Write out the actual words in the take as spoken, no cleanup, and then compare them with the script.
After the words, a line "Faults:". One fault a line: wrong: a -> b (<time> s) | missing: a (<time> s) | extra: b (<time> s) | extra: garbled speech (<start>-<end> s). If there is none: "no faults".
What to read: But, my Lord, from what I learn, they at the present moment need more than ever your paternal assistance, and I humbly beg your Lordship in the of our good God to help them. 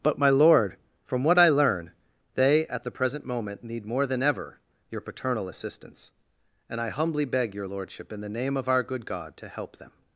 But, my Lord, from what I learn, they at the present moment need more than ever your paternal assistance, and I humbly beg your Lordship in the name of our good God to help them.
Faults:
extra: name (8.3 s)